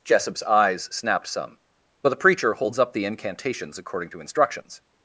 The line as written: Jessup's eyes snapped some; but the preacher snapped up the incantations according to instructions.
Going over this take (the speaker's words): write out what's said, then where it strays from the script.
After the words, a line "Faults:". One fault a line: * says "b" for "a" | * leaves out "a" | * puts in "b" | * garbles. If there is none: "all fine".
Jessup's eyes snapped some; but the preacher holds up the incantations according to instructions.
Faults:
* says "holds" for "snapped"